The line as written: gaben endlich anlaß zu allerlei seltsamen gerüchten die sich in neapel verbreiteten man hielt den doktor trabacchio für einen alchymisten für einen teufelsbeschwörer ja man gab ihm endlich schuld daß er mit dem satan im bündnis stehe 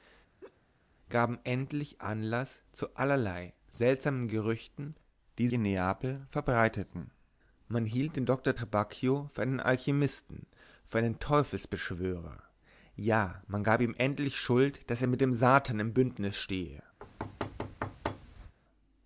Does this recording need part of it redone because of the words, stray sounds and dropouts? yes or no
yes